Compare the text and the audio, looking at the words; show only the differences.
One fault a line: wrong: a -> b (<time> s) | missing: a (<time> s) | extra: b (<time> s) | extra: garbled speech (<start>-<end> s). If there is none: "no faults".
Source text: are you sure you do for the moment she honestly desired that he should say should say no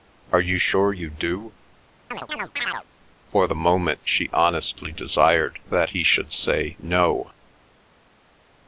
missing: should say (6.8 s)